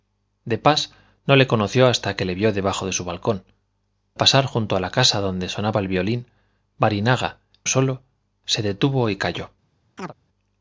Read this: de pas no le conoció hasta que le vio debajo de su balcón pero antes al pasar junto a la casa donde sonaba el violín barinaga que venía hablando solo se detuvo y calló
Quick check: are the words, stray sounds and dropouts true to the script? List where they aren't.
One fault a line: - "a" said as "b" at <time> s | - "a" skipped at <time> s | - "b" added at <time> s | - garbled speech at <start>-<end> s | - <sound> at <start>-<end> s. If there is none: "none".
- "pero antes al" skipped at 3.4 s
- "que venía hablando" skipped at 7.4 s
- chirp at 10.0-10.1 s